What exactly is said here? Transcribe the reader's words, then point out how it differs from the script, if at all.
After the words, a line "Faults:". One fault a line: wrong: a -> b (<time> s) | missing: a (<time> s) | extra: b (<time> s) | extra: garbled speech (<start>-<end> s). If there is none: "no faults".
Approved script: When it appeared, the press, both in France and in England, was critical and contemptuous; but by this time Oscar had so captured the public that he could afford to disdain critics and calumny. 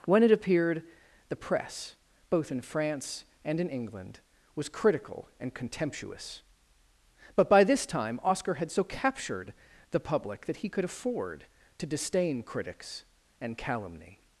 When it appeared, the press, both in France and in England, was critical and contemptuous; but by this time Oscar had so captured the public that he could afford to disdain critics and calumny.
Faults:
no faults